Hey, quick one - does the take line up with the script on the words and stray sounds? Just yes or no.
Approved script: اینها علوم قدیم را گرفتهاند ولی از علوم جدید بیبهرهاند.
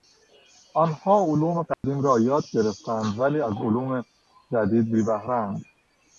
no